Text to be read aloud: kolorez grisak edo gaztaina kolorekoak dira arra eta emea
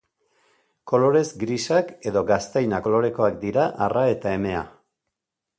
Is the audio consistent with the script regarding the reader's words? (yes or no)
yes